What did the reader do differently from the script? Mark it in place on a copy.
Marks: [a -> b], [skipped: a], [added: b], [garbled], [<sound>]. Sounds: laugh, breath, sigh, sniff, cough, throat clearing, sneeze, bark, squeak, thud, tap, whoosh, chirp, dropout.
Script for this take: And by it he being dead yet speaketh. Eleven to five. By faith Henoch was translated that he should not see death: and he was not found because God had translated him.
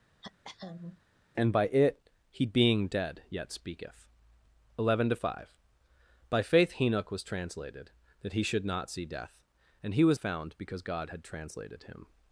[throat clearing] And by it he being dead yet speaketh. Eleven to five. By faith Henoch was translated that he should not see death: and he was [skipped: not] found because God had translated him.